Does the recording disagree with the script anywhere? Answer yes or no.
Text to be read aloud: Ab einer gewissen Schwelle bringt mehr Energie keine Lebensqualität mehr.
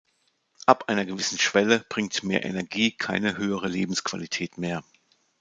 yes